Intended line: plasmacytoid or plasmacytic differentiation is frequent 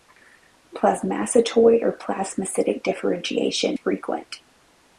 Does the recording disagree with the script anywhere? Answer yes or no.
yes